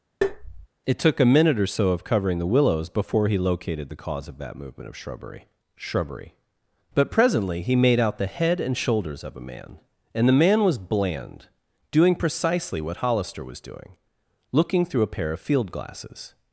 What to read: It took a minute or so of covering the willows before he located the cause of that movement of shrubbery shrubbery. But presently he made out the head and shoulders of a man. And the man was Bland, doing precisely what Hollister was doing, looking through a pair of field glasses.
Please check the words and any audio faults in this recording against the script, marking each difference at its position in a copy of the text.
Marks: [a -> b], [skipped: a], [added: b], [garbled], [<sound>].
[tap] It took a minute or so of covering the willows before he located the cause of that movement of shrubbery shrubbery. But presently he made out the head and shoulders of a man. And the man was Bland, doing precisely what Hollister was doing, looking through a pair of field glasses.